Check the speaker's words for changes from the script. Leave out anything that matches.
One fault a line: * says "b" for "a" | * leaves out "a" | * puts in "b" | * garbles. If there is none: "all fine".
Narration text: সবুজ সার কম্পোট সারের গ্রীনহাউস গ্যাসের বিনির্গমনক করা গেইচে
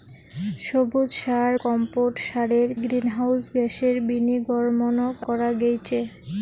all fine